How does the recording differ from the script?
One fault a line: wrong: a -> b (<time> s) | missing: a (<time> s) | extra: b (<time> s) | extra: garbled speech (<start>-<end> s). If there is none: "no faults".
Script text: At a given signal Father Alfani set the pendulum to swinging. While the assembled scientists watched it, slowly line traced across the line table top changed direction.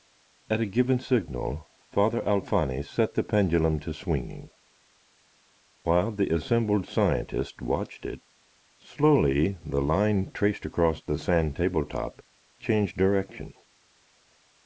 extra: the (9.6 s)
wrong: line -> sand (11.2 s)